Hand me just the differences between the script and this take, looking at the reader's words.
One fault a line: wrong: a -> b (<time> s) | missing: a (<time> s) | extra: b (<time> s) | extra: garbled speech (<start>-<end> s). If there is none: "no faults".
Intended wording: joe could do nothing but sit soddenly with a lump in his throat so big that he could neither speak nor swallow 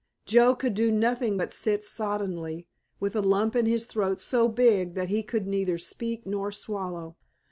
no faults